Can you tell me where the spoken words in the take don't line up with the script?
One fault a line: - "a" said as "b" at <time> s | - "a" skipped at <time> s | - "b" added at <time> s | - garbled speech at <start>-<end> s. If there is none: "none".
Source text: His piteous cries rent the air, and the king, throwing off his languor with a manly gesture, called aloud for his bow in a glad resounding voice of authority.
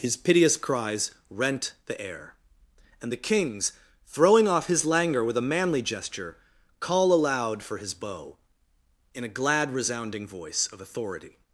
- "king" said as "kings" at 3.2 s
- "called" said as "call" at 6.8 s